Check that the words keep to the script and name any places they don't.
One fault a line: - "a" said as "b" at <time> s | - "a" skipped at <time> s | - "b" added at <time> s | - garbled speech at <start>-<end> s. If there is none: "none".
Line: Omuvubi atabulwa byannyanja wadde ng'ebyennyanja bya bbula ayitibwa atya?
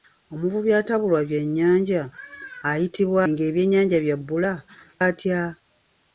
- "wadde" said as "ayitibwa" at 2.7 s
- "ayitibwa" skipped at 4.5 s